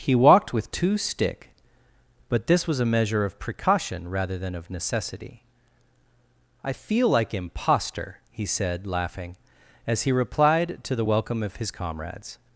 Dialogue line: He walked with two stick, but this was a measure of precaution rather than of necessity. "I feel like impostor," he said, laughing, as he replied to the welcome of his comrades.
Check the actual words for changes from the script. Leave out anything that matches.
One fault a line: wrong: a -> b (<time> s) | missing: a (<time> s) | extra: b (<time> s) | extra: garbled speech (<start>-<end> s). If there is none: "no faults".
no faults